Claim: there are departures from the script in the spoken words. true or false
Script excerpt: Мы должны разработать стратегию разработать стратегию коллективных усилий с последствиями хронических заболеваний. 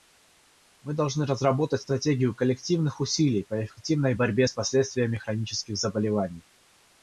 true